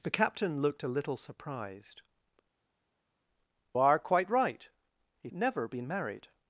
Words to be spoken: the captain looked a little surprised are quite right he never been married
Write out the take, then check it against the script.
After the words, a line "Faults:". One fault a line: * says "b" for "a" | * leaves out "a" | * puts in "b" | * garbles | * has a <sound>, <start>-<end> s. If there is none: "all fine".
the captain looked a little surprised are quite right he never been married
Faults:
all fine